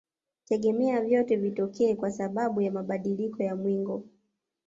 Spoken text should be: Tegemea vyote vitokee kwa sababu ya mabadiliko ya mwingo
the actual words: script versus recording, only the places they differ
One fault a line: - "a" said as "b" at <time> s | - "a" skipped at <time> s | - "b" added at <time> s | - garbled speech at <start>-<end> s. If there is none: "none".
none